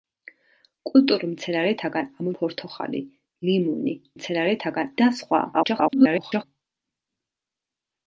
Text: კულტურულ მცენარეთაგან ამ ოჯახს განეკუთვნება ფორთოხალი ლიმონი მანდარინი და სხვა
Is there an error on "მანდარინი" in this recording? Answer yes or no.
yes